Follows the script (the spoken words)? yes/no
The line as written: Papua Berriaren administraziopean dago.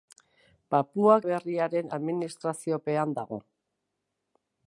yes